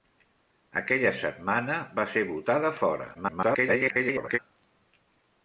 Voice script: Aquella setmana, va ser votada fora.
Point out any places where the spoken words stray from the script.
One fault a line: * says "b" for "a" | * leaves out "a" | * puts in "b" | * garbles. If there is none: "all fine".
* garbles